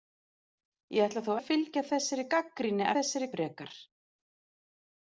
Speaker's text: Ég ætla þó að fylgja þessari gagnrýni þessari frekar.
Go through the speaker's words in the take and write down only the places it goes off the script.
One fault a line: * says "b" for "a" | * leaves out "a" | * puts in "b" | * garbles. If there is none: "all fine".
all fine